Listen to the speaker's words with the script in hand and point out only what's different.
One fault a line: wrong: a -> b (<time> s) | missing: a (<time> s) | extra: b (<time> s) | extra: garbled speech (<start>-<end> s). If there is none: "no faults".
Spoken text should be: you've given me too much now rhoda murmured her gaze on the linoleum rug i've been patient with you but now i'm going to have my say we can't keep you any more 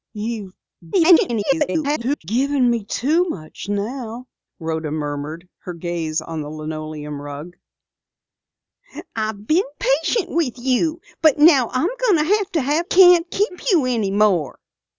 extra: garbled speech (0.9-2.2 s)
missing: my say we (12.9 s)